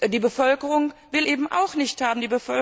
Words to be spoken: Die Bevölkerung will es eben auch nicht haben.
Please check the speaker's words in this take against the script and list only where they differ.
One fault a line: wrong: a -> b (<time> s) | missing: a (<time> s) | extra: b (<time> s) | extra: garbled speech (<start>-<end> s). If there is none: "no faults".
missing: es (1.3 s)